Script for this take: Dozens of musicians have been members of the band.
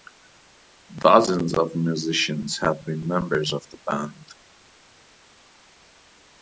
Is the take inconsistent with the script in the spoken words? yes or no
no